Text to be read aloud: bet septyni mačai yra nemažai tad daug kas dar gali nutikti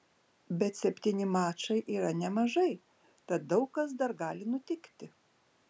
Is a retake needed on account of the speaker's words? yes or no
no